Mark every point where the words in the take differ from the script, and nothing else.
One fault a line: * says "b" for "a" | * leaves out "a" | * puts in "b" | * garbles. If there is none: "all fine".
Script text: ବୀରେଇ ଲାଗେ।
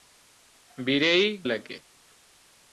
all fine